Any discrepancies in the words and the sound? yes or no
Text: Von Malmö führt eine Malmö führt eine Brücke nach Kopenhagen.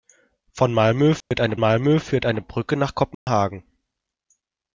yes